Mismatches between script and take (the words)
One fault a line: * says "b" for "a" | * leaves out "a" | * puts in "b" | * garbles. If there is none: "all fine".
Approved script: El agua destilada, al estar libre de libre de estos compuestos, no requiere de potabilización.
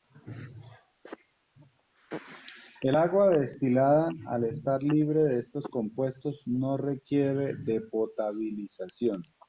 * leaves out "libre de"